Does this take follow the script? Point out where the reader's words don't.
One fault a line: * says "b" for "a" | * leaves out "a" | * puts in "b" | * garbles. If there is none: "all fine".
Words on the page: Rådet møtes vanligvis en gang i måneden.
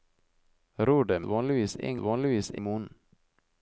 * leaves out "møtes"
* says "vanligvis" for "gang"